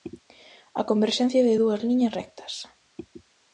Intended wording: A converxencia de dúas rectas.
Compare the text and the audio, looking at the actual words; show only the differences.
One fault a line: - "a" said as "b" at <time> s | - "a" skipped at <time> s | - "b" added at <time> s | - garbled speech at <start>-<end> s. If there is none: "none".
- "liñas" added at 1.9 s